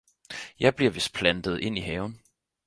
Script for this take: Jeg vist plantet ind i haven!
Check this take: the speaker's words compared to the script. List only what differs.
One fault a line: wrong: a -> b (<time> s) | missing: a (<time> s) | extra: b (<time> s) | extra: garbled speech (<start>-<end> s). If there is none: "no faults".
extra: bliver (0.8 s)